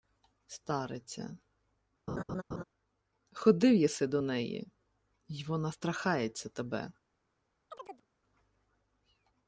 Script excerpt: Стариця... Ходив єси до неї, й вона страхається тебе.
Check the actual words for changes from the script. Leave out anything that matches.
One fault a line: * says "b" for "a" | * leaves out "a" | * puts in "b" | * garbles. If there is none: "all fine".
all fine